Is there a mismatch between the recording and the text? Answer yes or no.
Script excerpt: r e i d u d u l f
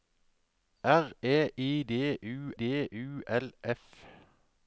no